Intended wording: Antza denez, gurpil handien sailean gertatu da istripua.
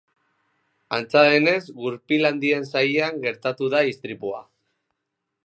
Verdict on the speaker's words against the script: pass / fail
pass